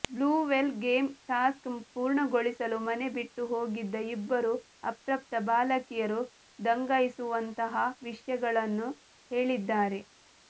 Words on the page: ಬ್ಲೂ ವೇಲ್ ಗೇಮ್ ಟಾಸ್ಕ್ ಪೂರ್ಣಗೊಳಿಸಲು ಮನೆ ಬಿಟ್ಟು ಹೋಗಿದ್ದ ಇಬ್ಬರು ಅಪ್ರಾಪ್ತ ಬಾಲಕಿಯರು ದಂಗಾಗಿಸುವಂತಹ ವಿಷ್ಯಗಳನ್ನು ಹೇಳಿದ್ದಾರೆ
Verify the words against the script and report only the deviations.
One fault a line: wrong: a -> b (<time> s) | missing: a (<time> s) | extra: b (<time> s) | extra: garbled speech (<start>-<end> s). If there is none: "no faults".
no faults